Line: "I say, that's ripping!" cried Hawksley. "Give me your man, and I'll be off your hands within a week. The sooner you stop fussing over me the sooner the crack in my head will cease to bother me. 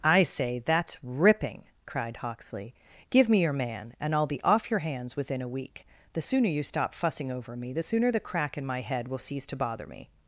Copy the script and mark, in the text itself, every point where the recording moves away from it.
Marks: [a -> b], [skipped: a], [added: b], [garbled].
"I say, that's ripping!" cried Hawksley. "Give me your man, and I'll be off your hands within a week. The sooner you stop fussing over me the sooner the crack in my head will cease to bother me.